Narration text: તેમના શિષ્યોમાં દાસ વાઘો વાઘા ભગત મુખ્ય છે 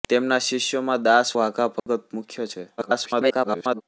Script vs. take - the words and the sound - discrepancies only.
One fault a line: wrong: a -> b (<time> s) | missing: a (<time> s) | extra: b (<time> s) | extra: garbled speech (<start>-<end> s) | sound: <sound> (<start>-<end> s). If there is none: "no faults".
missing: વાઘો (1.4 s)
sound: dropout (1.8-1.9 s)
extra: garbled speech (2.8-3.8 s)